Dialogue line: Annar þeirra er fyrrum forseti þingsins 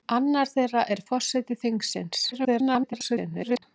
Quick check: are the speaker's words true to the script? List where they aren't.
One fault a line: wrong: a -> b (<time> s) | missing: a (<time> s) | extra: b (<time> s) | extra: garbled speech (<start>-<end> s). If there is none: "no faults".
missing: fyrrum (1.0 s)
extra: garbled speech (2.3-3.6 s)